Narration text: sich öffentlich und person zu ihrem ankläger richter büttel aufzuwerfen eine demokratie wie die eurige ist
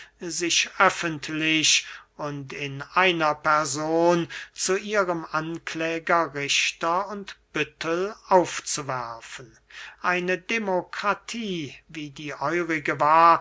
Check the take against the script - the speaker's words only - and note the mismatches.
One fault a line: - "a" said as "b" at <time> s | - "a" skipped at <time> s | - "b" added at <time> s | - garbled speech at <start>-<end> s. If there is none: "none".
- "in einer" added at 2.5 s
- "und" added at 7.1 s
- "ist" said as "war" at 13.0 s